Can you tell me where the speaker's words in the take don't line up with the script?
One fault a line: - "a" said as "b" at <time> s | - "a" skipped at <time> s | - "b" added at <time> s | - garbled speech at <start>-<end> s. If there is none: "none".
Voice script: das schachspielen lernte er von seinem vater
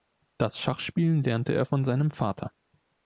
none